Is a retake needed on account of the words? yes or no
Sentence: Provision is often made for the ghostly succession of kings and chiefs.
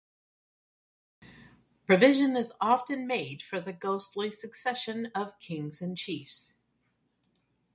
no